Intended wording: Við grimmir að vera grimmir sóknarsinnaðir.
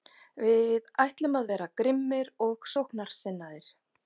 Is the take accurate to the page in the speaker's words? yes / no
no